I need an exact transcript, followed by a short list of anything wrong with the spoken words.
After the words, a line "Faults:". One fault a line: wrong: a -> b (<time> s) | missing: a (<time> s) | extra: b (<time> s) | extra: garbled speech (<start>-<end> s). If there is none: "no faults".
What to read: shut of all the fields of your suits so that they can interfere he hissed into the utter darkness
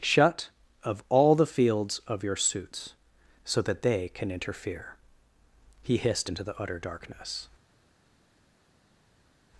shut of all the fields of your suits so that they can interfere he hissed into the utter darkness
Faults:
no faults